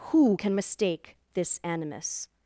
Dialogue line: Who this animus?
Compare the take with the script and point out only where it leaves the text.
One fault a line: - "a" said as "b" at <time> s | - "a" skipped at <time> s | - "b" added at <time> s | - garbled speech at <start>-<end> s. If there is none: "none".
- "can mistake" added at 0.3 s